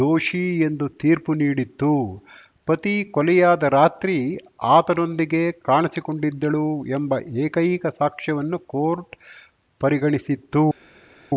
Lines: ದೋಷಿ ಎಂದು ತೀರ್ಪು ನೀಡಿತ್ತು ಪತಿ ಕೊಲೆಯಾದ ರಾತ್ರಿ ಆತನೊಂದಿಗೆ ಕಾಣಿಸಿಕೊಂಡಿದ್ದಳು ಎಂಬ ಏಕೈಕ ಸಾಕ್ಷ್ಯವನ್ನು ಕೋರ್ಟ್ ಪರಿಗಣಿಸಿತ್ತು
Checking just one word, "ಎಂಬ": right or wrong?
right